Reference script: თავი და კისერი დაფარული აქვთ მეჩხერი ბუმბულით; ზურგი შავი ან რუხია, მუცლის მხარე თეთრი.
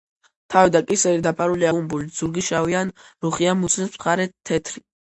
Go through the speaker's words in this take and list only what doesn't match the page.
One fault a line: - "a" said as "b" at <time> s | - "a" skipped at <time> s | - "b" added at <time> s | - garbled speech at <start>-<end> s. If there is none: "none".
- "აქვთ მეჩხერი" skipped at 1.7 s